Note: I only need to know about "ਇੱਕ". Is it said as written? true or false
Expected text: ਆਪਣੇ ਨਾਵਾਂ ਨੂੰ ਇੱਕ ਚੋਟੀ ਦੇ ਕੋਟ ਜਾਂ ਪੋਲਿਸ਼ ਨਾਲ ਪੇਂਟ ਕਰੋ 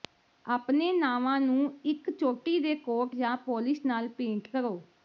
true